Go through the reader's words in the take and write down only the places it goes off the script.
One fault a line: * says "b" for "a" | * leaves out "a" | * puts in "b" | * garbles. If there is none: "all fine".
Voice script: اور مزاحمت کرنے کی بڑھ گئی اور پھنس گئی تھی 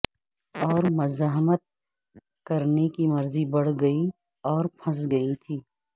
* puts in "مرضی"